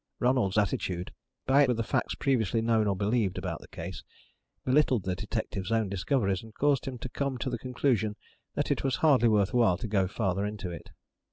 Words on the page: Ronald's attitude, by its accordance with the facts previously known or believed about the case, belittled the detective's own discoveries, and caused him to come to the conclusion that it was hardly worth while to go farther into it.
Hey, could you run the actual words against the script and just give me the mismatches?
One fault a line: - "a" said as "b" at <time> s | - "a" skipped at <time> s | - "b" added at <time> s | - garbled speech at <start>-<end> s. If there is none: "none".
- "its accordance" skipped at 1.6 s